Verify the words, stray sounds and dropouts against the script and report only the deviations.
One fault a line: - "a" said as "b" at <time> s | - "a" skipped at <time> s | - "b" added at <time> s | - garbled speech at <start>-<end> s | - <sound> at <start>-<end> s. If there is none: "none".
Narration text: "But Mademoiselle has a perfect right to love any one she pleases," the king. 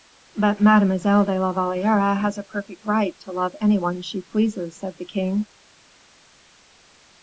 - "de la Valliere" added at 1.2 s
- "said" added at 4.8 s